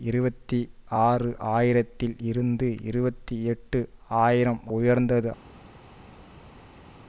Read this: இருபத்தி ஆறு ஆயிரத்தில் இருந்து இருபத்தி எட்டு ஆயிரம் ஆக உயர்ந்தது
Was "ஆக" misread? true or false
true